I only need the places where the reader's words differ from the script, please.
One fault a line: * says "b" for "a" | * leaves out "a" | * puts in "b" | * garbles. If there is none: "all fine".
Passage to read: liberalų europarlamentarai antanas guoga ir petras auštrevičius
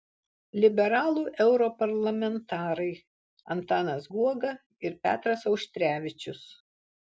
all fine